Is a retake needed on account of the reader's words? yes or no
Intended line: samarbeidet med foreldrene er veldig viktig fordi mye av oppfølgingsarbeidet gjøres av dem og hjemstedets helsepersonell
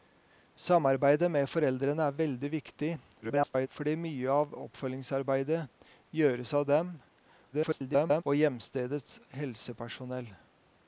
yes